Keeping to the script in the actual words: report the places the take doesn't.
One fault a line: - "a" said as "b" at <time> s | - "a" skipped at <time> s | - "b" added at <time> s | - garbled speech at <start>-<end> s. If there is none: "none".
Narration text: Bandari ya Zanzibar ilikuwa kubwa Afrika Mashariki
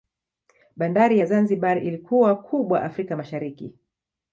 none